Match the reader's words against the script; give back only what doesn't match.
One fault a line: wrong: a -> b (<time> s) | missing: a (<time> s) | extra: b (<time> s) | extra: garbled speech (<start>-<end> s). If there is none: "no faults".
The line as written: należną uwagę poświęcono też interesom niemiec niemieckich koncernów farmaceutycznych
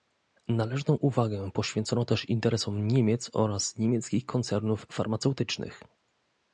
extra: oraz (3.3 s)